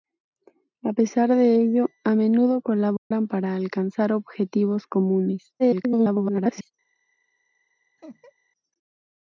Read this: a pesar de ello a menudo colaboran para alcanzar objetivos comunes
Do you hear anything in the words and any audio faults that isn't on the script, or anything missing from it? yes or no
yes